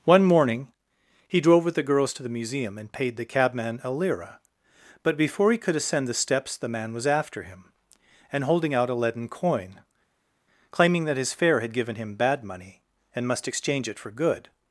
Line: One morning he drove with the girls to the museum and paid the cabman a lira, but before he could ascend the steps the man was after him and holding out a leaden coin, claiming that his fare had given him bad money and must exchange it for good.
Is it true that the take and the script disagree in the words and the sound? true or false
false